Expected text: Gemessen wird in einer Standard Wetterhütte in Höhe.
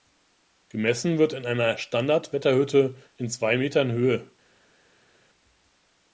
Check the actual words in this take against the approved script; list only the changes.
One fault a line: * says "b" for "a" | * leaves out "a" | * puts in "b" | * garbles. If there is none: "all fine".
* puts in "zwei Metern"